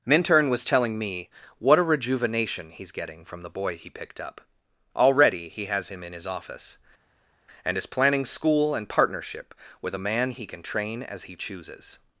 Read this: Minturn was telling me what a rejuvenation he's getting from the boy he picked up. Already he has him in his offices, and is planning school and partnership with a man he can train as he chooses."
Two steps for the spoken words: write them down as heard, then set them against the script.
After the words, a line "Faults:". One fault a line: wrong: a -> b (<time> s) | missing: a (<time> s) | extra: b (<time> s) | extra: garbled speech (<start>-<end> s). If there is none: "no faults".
Minturn was telling me what a rejuvenation he's getting from the boy he picked up. Already he has him in his office, and is planning school and partnership with a man he can train as he chooses."
Faults:
wrong: offices -> office (6.2 s)